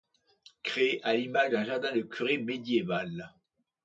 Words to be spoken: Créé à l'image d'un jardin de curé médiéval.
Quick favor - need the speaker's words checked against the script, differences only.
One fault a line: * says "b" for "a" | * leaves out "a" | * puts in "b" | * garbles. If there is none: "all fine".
all fine